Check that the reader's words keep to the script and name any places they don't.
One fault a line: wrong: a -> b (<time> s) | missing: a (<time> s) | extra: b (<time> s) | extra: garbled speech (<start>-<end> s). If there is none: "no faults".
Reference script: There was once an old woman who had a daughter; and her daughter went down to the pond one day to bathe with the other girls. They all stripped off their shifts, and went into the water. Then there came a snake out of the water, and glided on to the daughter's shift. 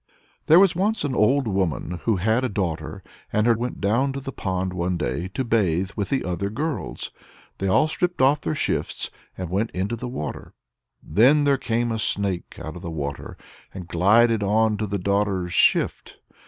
missing: daughter (3.5 s)